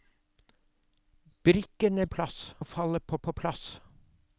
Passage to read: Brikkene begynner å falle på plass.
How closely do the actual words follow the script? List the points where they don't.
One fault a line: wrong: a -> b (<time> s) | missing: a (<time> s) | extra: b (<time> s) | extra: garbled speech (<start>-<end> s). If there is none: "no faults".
wrong: begynner -> plass (2.1 s)
extra: på (3.2 s)